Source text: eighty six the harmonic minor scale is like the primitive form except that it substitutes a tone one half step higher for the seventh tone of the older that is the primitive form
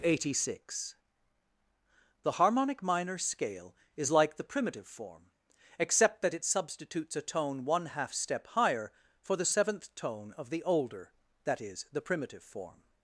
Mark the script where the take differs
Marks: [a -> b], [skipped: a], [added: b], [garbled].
eighty six the harmonic minor scale is like the primitive form except that it substitutes a tone one half step higher for the seventh tone of the older that is the primitive form